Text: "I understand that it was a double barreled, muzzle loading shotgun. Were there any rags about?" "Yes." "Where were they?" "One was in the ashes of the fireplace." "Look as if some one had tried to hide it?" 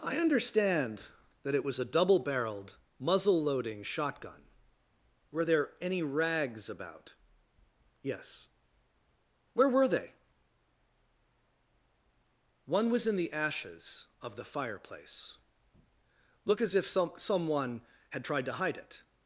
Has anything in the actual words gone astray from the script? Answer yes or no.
yes